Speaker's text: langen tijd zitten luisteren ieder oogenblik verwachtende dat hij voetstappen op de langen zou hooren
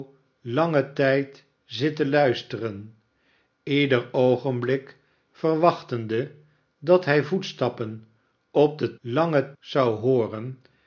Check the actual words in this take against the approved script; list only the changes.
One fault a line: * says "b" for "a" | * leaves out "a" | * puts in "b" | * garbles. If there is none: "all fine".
all fine